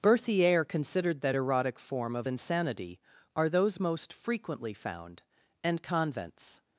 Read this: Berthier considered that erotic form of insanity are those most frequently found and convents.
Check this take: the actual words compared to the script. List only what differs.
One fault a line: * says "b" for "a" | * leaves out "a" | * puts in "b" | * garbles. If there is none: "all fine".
all fine